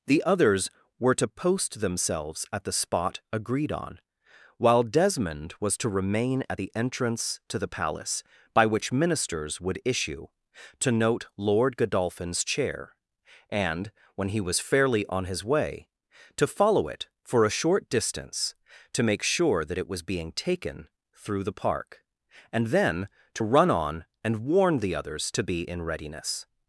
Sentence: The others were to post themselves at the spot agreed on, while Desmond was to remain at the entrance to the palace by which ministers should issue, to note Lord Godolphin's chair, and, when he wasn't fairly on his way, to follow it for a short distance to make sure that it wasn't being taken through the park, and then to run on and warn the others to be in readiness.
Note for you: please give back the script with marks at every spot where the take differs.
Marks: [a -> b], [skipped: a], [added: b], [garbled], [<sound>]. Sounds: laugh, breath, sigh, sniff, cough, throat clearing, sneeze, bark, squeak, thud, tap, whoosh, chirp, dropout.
The others were to post themselves at the spot agreed on, while Desmond was to remain at the entrance to the palace by which ministers [should -> would] issue, to note Lord Godolphin's chair, and, when he [wasn't -> was] fairly on his way, to follow it for a short distance to make sure that it [wasn't -> was] being taken through the park, and then to run on and warn the others to be in readiness.